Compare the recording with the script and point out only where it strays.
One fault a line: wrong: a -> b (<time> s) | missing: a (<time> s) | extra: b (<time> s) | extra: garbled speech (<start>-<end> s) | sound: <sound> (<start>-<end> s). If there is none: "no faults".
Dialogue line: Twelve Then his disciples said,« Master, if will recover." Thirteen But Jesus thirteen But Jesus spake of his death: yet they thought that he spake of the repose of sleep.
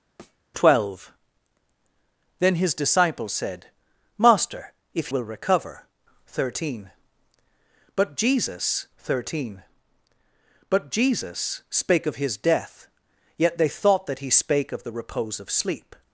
sound: thud (0.2-0.4 s)